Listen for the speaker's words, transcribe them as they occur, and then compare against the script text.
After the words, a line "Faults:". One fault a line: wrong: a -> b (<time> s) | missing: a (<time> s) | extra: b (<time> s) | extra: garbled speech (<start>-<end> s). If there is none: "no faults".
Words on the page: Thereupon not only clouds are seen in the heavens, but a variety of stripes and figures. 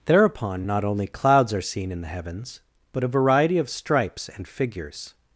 Thereupon not only clouds are seen in the heavens, but a variety of stripes and figures.
Faults:
no faults